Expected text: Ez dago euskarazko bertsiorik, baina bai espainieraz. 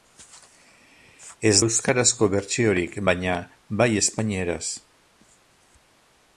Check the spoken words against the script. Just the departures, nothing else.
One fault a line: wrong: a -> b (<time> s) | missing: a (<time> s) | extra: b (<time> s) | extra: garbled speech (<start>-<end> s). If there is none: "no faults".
missing: dago (1.6 s)